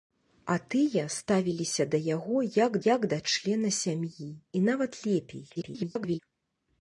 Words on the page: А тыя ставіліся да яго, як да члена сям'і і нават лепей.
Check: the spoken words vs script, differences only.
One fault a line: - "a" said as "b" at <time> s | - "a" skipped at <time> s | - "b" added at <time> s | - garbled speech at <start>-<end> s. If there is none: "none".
- "як" added at 2.9 s
- garbled speech at 5.6-6.2 s